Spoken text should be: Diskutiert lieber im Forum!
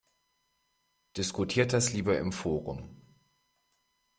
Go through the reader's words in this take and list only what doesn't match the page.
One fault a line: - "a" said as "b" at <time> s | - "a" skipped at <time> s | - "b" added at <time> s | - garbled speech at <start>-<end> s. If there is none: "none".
- "das" added at 1.7 s